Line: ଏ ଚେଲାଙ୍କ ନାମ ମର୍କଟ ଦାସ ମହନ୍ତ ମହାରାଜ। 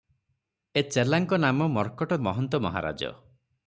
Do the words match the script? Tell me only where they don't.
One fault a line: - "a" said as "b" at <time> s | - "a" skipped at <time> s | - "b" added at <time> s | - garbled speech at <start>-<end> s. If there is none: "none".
- "ଦାସ" skipped at 2.2 s